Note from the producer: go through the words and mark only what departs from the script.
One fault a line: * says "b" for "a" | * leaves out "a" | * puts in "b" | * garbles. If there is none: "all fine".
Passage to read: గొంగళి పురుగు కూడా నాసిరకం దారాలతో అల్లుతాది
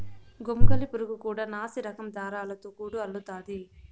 * puts in "గూడు"